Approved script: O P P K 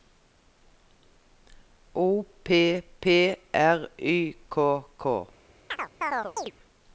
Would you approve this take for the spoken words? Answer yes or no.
no